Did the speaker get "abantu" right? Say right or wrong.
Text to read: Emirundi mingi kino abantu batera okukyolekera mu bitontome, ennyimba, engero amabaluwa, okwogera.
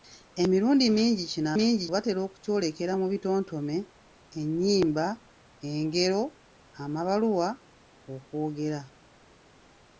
wrong